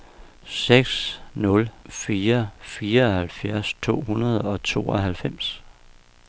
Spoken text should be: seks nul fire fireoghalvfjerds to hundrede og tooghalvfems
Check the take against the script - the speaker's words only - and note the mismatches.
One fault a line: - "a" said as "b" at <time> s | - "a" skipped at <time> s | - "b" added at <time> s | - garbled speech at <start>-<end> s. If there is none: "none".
none